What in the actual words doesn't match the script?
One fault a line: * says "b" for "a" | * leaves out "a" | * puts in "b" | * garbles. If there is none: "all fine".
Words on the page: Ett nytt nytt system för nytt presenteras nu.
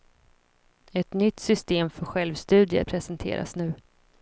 * leaves out "nytt"
* says "självstudier" for "nytt"